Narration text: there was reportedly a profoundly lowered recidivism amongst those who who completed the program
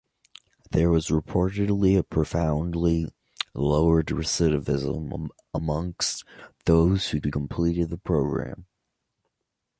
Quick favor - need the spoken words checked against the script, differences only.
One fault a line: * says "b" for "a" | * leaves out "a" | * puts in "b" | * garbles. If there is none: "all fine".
all fine